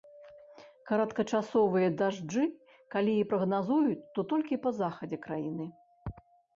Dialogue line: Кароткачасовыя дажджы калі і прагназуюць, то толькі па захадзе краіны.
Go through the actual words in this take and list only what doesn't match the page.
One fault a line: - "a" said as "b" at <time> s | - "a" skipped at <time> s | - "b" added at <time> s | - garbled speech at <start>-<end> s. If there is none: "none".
none